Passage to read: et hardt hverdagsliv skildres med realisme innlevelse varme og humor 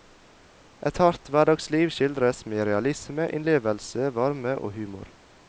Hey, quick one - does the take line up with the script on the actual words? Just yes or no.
yes